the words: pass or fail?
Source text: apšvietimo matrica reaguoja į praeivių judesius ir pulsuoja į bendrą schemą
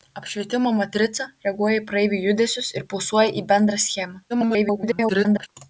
fail